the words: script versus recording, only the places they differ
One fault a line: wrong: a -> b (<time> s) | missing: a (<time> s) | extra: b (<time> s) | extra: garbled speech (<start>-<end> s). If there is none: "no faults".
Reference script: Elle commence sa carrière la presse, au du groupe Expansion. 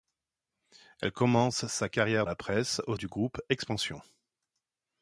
no faults